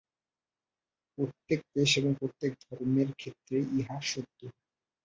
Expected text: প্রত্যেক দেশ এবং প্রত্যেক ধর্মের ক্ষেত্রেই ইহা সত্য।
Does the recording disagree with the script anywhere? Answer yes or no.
no